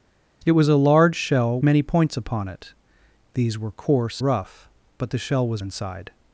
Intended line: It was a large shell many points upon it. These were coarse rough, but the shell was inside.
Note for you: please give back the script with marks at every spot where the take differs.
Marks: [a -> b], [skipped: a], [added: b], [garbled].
It was a large shell many points upon it. These were coarse rough, but the shell was inside.